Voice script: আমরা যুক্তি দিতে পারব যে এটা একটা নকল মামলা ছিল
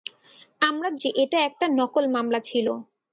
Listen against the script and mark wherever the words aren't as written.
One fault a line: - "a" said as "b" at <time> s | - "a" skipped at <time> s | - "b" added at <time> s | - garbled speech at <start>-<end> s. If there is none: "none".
- "যুক্তি দিতে পারব" skipped at 0.9 s